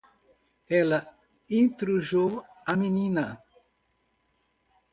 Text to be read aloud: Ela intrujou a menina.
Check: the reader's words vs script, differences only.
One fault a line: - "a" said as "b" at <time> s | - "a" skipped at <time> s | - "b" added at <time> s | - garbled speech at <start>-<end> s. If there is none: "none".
none